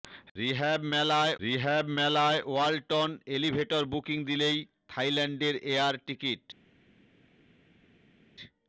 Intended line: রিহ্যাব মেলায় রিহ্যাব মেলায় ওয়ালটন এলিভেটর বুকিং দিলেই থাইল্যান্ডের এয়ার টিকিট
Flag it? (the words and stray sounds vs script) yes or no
no